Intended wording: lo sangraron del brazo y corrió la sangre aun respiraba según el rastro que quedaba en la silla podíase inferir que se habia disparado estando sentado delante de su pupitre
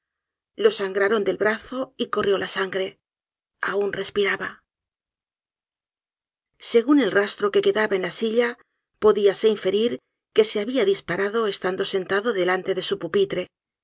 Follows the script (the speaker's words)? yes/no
yes